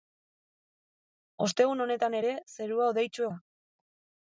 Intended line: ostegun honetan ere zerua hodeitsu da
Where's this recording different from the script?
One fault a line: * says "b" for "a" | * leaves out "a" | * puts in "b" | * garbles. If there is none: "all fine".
all fine